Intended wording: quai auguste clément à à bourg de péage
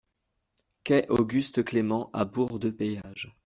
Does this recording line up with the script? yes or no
no